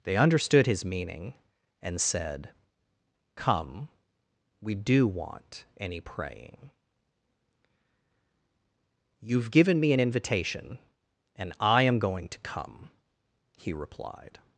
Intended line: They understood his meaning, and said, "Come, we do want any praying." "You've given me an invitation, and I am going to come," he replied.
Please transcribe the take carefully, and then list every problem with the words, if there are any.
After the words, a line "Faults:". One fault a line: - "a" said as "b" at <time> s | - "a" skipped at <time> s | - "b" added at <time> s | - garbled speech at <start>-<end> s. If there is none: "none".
They understood his meaning, and said, "Come, we do want any praying." "You've given me an invitation, and I am going to come," he replied.
Faults:
none